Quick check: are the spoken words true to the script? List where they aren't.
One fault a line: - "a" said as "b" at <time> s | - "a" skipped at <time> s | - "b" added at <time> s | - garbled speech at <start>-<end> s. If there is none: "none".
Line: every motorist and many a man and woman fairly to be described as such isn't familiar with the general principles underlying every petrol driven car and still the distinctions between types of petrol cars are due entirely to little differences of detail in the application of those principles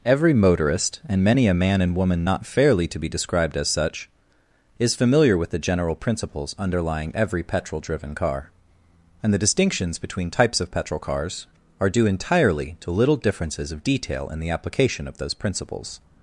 - "not" added at 2.2 s
- "isn't" said as "is" at 4.8 s
- "still" skipped at 9.3 s